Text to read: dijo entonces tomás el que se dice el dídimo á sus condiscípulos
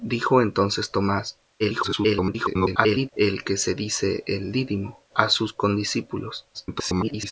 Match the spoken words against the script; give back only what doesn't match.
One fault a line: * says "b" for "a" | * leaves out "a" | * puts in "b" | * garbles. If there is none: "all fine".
* garbles
* garbles